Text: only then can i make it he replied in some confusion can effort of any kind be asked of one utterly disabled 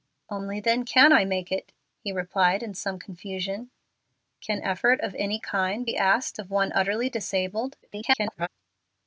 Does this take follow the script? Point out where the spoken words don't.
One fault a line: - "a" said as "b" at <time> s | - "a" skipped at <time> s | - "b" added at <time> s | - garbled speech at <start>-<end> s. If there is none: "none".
- garbled speech at 7.8-8.5 s